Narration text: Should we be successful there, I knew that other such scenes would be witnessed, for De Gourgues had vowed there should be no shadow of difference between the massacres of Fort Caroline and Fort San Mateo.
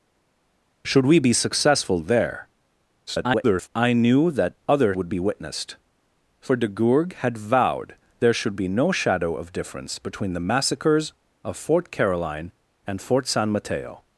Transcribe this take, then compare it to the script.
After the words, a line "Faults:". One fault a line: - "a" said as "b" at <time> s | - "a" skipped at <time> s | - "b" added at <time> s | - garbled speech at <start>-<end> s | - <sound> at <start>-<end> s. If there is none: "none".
Should we be successful there, [garbled] I knew that other would be witnessed, for De Gourgues had vowed there should be no shadow of difference between the massacres of Fort Caroline and Fort San Mateo.
Faults:
- garbled speech at 3.1-3.7 s
- "such scenes" skipped at 5.0 s